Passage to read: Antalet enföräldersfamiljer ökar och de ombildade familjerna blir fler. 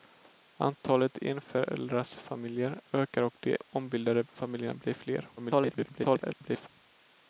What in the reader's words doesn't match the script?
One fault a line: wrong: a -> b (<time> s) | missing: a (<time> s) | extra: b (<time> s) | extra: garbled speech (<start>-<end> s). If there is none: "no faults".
extra: garbled speech (5.4-6.7 s)